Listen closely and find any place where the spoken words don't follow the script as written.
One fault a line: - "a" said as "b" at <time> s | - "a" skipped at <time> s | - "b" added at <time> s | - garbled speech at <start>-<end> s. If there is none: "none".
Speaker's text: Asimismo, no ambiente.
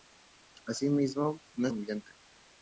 none